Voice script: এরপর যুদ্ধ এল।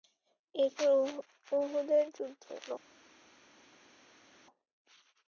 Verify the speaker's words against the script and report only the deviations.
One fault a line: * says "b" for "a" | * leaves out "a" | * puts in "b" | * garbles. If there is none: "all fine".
* puts in "উহুদের"